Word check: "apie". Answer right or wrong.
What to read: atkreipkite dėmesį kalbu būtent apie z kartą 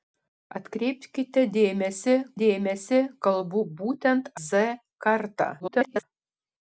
wrong